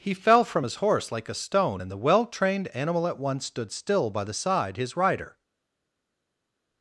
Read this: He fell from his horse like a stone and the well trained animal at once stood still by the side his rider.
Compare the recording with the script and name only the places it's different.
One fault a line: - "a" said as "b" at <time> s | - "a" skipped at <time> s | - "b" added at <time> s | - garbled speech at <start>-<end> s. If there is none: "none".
none